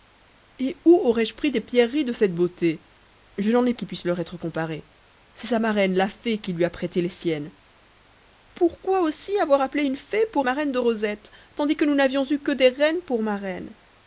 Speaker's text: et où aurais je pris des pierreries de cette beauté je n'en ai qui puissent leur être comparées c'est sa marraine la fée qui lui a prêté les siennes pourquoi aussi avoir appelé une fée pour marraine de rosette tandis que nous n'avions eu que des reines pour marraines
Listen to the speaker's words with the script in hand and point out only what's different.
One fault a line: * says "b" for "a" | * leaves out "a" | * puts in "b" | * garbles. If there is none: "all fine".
all fine